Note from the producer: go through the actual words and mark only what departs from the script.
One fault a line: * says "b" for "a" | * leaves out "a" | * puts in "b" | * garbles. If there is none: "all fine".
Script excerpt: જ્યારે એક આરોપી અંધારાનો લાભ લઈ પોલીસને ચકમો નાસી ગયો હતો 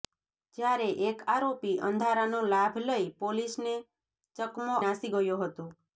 all fine